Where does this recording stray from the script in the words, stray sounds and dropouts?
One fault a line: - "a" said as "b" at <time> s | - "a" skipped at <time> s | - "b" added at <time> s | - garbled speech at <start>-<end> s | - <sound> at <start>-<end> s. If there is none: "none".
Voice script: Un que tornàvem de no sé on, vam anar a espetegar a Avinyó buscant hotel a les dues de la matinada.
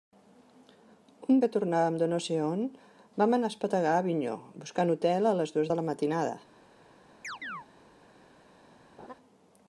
- chirp at 7.2-7.7 s
- laugh at 9.0-9.1 s